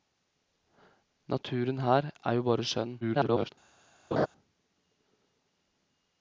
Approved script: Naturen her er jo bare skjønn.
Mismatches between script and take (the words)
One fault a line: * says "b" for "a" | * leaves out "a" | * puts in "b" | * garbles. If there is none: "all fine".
* garbles